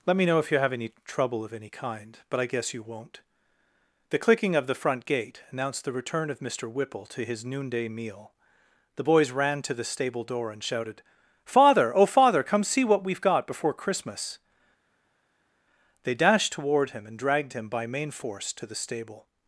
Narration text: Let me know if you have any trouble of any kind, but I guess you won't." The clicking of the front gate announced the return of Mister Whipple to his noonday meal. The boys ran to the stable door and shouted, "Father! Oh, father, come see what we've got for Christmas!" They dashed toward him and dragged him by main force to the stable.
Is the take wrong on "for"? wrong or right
wrong